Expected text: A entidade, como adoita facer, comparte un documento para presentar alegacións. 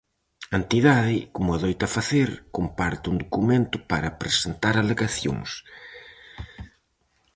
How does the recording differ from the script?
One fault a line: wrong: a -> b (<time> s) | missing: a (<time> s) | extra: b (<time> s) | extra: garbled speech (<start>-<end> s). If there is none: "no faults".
no faults